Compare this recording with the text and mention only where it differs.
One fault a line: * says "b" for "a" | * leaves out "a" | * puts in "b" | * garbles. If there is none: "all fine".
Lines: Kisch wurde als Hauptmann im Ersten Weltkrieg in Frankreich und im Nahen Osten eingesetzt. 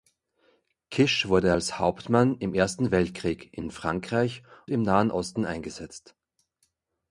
* leaves out "und"